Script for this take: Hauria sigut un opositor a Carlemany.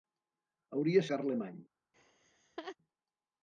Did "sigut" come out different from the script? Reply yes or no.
yes